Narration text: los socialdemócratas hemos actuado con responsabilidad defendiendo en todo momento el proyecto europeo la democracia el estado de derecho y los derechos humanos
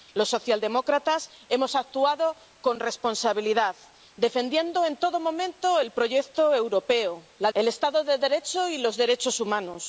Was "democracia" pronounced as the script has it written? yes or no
no